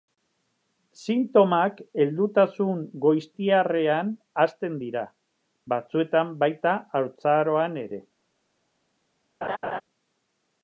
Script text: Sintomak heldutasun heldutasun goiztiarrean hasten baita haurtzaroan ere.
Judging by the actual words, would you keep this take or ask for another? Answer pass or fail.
fail